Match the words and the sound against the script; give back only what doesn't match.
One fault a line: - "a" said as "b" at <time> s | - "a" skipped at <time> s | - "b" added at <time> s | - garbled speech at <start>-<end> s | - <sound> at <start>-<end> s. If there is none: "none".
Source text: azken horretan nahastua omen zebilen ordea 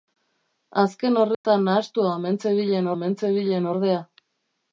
- dropout at 1.3-1.4 s
- "omen zebilen" added at 2.9 s